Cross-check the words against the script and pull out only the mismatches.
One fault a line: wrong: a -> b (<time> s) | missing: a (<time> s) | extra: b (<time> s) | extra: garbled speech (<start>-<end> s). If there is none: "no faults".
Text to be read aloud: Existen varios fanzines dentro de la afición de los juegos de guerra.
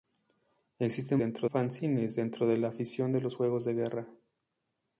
wrong: varios -> dentro (1.2 s)